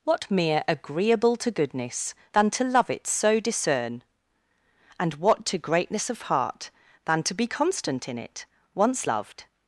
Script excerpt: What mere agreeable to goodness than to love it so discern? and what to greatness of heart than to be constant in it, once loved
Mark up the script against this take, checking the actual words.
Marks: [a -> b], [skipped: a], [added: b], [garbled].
What mere agreeable to goodness than to love it so discern? and what to greatness of heart than to be constant in it, once loved